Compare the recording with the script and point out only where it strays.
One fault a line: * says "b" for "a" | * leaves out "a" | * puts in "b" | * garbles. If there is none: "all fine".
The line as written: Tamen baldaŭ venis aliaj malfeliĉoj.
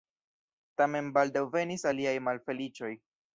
all fine